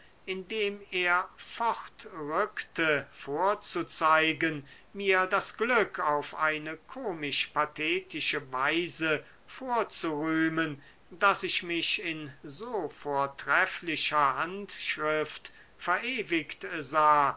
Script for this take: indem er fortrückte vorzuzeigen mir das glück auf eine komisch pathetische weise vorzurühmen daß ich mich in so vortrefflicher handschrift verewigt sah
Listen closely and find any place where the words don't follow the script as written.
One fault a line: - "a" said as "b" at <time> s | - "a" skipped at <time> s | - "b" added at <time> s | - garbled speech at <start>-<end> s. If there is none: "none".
none